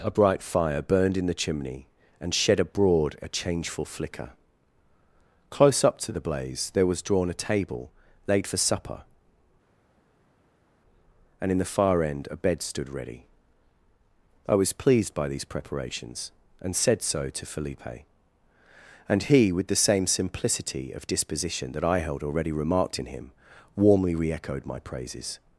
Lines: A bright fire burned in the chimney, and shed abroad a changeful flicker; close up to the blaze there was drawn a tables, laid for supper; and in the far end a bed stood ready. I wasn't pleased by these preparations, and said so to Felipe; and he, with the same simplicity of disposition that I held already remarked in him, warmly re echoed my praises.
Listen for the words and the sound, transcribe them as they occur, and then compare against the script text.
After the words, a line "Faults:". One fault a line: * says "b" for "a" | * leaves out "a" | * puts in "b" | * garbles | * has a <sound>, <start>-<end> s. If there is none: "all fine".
A bright fire burned in the chimney, and shed abroad a changeful flicker; close up to the blaze there was drawn a table, laid for supper; and in the far end a bed stood ready. I was pleased by these preparations, and said so to Felipe; and he, with the same simplicity of disposition that I held already remarked in him, warmly re echoed my praises.
Faults:
* says "table" for "tables"
* says "was" for "wasn't"